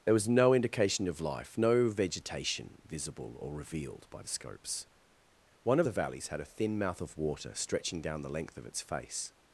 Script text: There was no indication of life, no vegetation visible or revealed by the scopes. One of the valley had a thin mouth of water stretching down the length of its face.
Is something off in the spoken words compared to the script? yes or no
yes